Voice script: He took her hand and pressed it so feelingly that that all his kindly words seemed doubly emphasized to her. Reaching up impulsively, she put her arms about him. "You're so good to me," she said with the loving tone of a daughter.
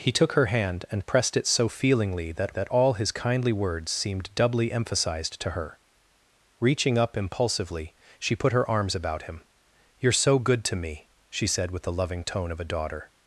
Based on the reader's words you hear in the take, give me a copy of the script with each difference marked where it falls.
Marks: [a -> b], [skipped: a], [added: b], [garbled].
He took her hand and pressed it so feelingly that that all his kindly words seemed doubly emphasized to her. Reaching up impulsively, she put her arms about him. "You're so good to me," she said with the loving tone of a daughter.